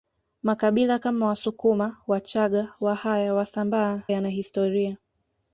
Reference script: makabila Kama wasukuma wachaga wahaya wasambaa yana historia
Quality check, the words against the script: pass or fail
pass